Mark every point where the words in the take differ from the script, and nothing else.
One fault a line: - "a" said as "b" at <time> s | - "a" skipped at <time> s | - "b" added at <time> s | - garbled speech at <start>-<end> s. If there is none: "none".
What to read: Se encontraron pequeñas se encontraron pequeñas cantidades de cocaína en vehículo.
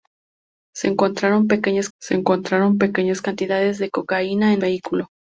none